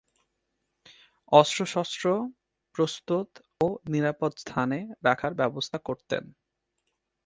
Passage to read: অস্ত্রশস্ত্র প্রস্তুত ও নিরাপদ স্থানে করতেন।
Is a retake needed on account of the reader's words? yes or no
yes